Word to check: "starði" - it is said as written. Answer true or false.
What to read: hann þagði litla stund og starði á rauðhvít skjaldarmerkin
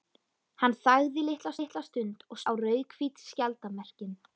false